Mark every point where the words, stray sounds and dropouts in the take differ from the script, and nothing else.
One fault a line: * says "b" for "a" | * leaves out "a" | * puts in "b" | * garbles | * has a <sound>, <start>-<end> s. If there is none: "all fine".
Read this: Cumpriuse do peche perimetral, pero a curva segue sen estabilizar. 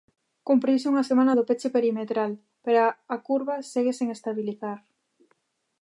* puts in "unha semana"